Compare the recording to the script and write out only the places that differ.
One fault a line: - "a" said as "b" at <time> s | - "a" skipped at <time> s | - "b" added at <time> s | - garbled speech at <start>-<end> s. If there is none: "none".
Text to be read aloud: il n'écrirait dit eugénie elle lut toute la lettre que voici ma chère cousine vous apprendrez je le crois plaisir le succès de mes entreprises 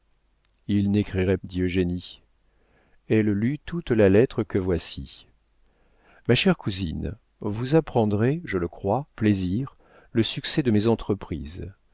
none